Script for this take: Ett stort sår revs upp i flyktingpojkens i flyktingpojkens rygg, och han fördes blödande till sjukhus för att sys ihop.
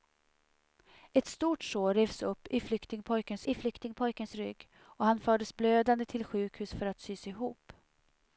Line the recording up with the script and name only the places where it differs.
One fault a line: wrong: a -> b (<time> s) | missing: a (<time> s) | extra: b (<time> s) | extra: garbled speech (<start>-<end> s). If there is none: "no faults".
no faults